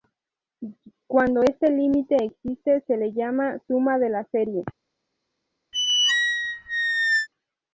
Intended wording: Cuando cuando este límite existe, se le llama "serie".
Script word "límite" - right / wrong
right